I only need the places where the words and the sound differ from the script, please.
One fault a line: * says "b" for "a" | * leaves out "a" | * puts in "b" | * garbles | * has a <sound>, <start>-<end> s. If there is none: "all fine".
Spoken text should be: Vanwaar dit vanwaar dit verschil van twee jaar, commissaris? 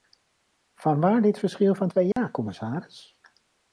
* leaves out "vanwaar dit"
* has a dropout, 2.1-2.2 s